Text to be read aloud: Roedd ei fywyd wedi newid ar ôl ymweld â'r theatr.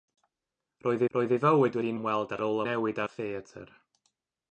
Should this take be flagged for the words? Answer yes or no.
yes